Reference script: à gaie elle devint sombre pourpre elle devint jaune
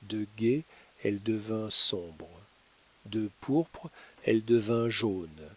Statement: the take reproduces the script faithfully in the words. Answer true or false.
false